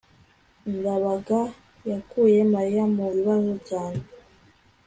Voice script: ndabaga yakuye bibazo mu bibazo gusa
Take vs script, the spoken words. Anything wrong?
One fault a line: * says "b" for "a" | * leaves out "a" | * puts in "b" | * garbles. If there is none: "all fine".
* says "mariya" for "bibazo"
* says "cyane" for "gusa"